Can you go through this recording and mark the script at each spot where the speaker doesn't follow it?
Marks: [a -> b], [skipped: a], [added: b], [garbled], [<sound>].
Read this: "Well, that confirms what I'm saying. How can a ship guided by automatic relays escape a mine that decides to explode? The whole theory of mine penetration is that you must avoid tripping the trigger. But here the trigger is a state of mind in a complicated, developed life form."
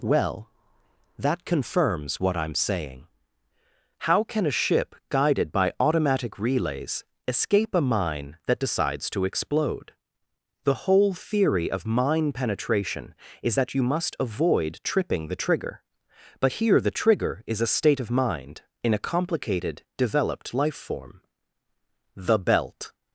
"Well, that confirms what I'm saying. How can a ship guided by automatic relays escape a mine that decides to explode? The whole theory of mine penetration is that you must avoid tripping the trigger. But here the trigger is a state of mind in a complicated, developed life form." [added: The belt]